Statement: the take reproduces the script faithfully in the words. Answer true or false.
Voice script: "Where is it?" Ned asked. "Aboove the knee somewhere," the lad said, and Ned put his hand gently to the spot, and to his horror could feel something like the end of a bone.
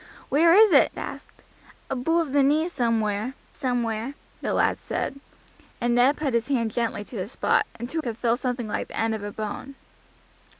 false